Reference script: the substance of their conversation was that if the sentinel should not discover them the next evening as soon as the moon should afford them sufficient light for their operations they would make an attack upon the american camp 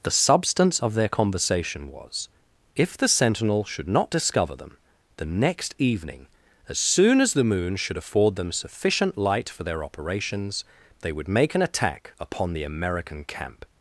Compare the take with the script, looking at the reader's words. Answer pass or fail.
fail